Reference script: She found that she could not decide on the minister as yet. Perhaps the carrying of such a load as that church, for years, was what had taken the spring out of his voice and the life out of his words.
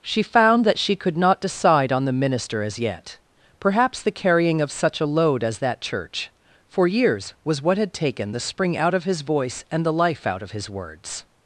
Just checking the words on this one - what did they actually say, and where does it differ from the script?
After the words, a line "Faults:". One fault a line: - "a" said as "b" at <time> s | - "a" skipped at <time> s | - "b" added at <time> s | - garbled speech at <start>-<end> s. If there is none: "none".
She found that she could not decide on the minister as yet. Perhaps the carrying of such a load as that church, for years, was what had taken the spring out of his voice and the life out of his words.
Faults:
none